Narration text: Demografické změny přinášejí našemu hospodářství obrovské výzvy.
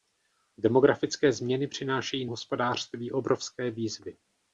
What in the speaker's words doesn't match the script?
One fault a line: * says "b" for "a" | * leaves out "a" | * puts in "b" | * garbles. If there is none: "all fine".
* leaves out "našemu"